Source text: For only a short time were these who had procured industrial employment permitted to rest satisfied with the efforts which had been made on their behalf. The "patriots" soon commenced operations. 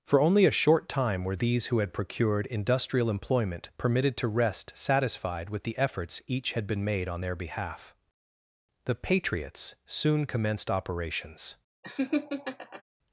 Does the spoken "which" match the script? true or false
false